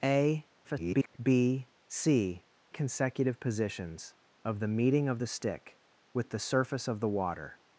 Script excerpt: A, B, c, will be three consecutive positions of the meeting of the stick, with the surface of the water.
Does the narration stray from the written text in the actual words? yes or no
yes